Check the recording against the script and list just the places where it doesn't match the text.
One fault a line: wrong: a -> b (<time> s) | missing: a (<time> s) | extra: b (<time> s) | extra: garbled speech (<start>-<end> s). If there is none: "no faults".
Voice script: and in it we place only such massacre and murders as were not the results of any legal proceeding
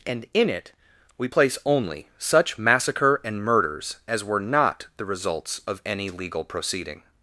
no faults